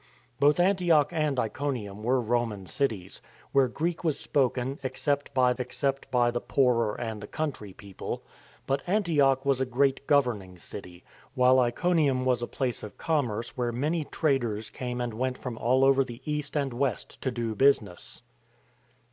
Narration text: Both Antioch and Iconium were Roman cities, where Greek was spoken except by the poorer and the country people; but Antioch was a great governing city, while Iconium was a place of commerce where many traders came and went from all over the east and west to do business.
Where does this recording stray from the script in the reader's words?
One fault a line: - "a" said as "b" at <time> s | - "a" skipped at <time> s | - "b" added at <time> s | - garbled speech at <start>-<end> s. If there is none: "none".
- "except by" added at 5.6 s